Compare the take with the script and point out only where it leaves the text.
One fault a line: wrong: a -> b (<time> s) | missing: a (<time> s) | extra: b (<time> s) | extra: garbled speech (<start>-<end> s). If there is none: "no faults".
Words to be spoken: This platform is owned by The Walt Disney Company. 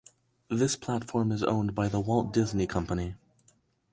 no faults